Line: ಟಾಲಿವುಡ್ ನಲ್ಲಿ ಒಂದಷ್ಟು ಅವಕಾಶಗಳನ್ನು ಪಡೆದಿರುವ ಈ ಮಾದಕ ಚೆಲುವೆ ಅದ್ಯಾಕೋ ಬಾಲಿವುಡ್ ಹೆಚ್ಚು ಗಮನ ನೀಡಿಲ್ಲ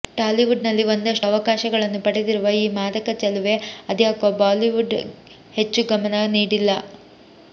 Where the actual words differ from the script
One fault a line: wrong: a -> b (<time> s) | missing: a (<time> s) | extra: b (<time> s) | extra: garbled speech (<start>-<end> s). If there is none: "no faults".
no faults